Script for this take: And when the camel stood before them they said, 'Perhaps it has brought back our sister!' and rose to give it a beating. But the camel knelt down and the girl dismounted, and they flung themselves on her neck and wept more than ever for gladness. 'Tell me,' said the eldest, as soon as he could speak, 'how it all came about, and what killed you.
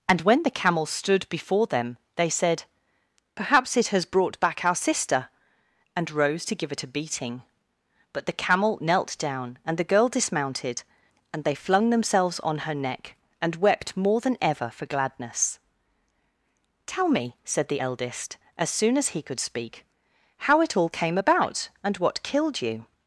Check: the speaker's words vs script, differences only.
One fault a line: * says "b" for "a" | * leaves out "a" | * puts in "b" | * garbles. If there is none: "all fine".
all fine